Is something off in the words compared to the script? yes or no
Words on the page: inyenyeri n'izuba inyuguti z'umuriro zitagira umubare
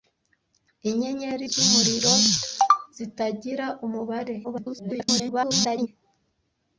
yes